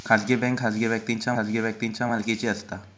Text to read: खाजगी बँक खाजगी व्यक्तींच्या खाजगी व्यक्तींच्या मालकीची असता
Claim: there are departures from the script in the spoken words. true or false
false